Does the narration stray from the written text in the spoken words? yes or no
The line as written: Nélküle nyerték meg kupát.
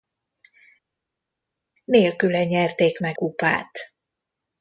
no